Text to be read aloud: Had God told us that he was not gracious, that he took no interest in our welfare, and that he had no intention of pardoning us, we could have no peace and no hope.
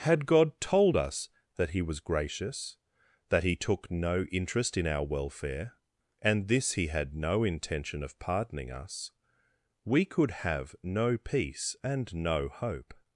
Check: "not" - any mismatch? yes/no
yes